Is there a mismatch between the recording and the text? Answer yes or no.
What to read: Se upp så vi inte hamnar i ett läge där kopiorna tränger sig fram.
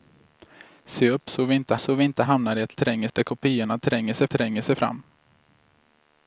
yes